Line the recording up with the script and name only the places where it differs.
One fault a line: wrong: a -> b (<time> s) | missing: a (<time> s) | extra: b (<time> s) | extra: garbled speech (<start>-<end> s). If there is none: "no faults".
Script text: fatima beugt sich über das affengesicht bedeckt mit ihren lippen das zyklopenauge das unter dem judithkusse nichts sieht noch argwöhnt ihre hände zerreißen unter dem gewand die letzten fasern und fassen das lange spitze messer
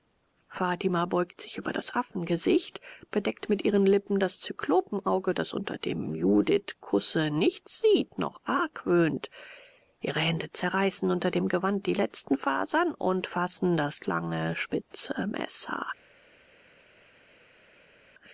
no faults